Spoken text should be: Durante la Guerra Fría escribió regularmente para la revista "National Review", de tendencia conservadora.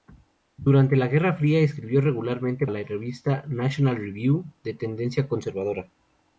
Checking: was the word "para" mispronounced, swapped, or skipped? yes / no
yes